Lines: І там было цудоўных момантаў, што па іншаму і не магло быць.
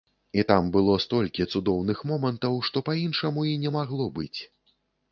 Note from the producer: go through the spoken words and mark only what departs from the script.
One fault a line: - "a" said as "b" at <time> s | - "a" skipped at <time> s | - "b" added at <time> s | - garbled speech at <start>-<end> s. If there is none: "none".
- "столькі" added at 1.0 s